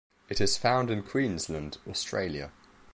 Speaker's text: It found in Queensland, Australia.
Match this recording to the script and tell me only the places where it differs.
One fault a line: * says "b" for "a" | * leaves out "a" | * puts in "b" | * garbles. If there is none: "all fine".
* puts in "is"